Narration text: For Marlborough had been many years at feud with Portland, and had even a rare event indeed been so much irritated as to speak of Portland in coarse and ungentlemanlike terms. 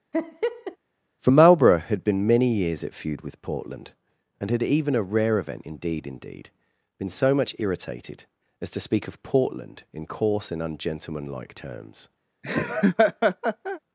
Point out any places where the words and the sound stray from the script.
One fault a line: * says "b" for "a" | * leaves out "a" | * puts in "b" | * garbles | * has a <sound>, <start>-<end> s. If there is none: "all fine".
* has a laugh, 0.1-0.8 s
* puts in "indeed"
* has a laugh, 12.4-13.8 s